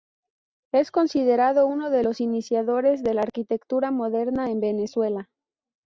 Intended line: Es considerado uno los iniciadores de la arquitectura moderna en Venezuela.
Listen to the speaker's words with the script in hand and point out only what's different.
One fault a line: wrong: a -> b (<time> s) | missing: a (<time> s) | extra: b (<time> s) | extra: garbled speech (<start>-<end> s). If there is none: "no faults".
extra: de (1.9 s)